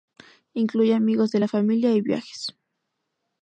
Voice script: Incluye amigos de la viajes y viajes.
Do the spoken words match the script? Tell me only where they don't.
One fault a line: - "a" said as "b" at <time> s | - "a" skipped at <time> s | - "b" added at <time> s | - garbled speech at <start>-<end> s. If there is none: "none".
- "viajes" said as "familia" at 1.5 s